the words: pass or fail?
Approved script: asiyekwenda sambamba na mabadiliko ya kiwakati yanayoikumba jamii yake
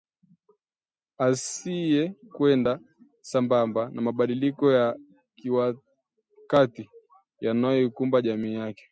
pass